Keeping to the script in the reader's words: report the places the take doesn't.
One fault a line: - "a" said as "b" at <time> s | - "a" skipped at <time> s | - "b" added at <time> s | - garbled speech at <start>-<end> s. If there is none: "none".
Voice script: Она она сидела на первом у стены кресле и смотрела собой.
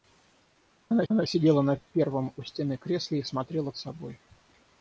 none